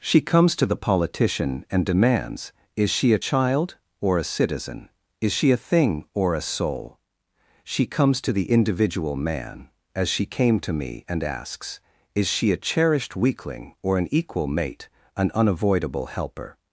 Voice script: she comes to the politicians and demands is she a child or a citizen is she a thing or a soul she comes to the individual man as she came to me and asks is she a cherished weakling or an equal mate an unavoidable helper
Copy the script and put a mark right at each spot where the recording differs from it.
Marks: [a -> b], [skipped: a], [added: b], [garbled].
she comes to the [politicians -> politician] and demands is she a child or a citizen is she a thing or a soul she comes to the individual man as she came to me and asks is she a cherished weakling or an equal mate an unavoidable helper